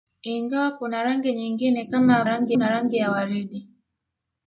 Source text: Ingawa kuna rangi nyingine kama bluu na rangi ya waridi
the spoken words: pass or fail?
fail